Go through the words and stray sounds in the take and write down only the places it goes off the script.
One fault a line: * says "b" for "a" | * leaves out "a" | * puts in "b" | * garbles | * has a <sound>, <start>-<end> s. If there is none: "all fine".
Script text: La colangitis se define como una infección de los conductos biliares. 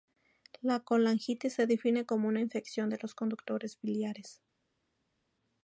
all fine